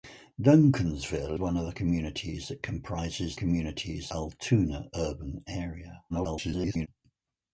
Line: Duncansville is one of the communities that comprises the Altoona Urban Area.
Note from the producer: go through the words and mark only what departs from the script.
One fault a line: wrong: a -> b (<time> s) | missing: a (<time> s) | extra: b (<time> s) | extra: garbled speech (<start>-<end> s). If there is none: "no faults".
missing: is (1.4 s)
wrong: the -> communities (3.3 s)
extra: garbled speech (6.1-6.9 s)